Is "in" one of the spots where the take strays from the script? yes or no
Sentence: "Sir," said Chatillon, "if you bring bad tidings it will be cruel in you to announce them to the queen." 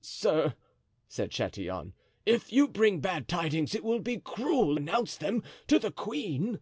yes